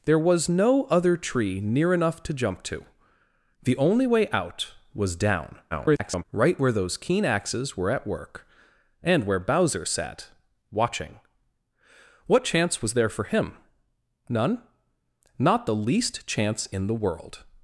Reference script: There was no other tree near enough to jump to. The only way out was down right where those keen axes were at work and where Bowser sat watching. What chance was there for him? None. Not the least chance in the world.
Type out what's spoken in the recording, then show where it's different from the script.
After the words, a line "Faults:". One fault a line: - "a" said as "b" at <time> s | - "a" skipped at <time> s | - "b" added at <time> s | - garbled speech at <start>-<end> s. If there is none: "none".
There was no other tree near enough to jump to. The only way out was down [garbled] right where those keen axes were at work and where Bowser sat watching. What chance was there for him? None. Not the least chance in the world.
Faults:
- garbled speech at 5.7-6.2 s